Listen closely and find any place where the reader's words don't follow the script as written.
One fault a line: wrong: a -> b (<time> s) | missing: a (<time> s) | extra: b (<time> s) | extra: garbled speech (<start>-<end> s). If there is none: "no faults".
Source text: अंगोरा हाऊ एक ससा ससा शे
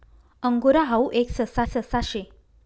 no faults